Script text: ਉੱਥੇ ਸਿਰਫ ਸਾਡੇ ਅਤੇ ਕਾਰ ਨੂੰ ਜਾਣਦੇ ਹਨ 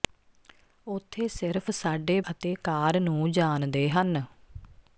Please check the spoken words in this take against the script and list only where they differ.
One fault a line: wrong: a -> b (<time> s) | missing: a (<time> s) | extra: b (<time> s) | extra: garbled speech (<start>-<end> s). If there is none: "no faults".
no faults